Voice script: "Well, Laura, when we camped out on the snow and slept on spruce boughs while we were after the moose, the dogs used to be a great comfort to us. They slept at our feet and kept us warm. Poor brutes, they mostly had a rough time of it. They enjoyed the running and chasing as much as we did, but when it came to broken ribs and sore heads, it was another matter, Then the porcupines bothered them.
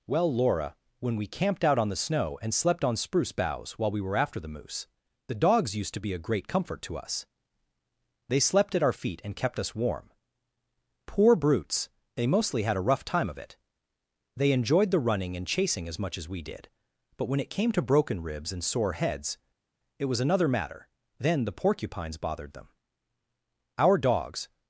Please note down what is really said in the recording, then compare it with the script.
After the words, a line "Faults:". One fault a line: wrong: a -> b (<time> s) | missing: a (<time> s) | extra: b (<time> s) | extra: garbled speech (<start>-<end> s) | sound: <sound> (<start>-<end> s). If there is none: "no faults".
"Well, Laura, when we camped out on the snow and slept on spruce boughs while we were after the moose, the dogs used to be a great comfort to us. They slept at our feet and kept us warm. Poor brutes, they mostly had a rough time of it. They enjoyed the running and chasing as much as we did, but when it came to broken ribs and sore heads, it was another matter, Then the porcupines bothered them. Our dogs
Faults:
extra: Our dogs (23.8 s)